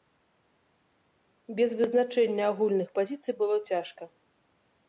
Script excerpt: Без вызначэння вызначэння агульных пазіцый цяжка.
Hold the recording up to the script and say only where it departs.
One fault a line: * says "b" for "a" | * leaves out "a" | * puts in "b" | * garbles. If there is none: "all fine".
* leaves out "вызначэння"
* puts in "было"